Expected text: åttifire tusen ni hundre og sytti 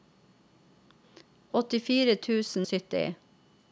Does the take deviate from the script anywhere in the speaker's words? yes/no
yes